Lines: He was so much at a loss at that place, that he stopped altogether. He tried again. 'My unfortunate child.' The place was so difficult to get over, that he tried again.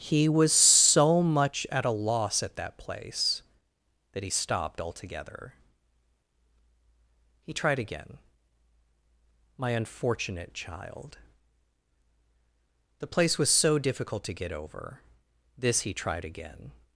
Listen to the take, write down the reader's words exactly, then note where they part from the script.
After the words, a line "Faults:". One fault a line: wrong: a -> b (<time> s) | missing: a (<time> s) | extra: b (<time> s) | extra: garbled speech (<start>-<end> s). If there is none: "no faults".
He was so much at a loss at that place, that he stopped altogether. He tried again. 'My unfortunate child.' The place was so difficult to get over, this he tried again.
Faults:
wrong: that -> this (15.6 s)